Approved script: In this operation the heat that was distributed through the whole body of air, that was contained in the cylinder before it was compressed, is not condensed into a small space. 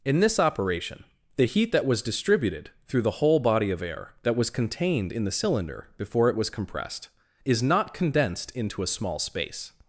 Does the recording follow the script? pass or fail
pass